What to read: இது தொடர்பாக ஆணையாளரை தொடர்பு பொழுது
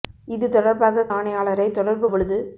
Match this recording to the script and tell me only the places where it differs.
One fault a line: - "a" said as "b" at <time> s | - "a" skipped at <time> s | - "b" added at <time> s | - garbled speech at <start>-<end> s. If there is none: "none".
none